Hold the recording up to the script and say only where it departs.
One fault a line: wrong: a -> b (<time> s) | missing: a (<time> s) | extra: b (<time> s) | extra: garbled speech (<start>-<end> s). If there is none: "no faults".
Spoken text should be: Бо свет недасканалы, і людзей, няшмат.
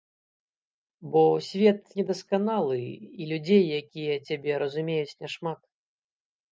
extra: якія цябе разумеюць (3.8 s)